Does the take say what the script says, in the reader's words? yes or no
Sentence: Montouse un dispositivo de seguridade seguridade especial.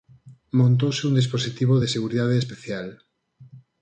no